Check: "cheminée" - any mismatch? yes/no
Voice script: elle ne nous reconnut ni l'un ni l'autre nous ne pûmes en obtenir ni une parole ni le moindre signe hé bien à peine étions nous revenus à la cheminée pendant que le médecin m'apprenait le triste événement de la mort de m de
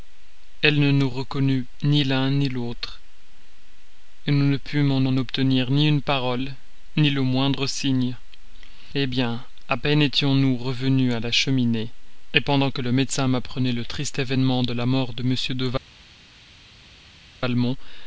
no